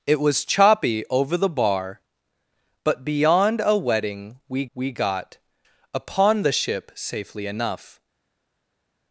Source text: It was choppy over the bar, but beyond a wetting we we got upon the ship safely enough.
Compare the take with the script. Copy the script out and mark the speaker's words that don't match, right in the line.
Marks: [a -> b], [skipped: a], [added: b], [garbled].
It was choppy over the bar, but beyond a wetting we we got upon the ship safely enough.